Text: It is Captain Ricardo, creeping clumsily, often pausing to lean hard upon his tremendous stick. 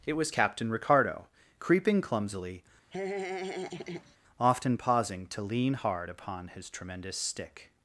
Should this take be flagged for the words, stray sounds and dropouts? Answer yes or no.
yes